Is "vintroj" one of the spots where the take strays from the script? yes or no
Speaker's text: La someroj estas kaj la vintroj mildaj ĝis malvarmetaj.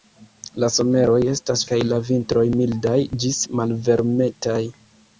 no